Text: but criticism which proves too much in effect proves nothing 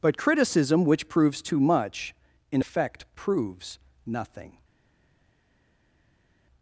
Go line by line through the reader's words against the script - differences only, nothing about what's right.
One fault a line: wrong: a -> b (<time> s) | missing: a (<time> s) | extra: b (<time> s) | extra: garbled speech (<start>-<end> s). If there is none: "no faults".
no faults